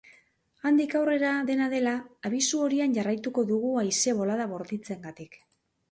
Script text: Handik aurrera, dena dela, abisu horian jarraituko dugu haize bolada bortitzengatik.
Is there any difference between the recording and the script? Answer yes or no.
no